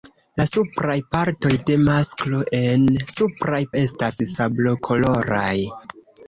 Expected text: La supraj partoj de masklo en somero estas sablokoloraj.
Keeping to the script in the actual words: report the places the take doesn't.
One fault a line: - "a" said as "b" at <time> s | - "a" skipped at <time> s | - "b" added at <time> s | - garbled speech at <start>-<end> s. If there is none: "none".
- "somero" said as "supraj" at 3.1 s